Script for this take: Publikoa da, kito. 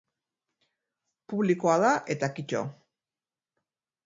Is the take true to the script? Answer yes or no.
no